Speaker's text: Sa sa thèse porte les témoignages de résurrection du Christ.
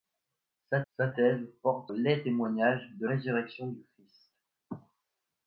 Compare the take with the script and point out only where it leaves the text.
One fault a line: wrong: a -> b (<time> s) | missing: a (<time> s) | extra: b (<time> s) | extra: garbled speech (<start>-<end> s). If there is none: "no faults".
no faults